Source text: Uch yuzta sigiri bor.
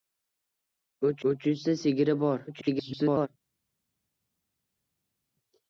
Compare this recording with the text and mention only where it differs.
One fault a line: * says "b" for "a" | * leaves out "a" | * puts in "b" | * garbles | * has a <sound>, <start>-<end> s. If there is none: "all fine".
* puts in "uch"
* garbles